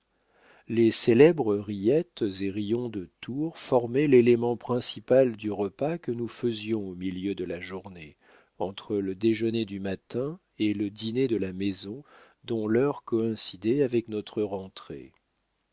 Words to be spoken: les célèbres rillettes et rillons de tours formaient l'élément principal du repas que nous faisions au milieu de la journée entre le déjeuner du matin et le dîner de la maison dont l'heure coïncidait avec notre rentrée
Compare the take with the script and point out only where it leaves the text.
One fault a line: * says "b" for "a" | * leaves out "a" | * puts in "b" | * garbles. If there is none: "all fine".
all fine